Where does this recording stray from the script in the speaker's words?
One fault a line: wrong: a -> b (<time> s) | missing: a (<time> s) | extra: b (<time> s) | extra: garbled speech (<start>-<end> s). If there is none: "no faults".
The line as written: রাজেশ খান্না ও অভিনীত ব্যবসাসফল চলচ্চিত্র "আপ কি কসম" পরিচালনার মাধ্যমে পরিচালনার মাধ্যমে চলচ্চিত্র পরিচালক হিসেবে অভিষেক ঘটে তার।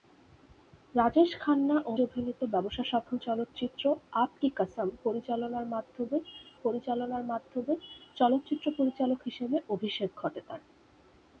no faults